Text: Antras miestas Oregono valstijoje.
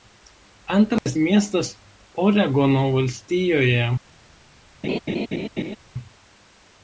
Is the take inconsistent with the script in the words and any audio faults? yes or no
yes